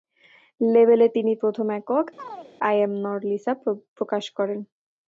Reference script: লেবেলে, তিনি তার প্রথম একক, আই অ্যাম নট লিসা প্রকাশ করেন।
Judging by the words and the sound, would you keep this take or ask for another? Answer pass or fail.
fail